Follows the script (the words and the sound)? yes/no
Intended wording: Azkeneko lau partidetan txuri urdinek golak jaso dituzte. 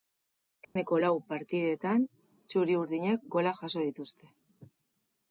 no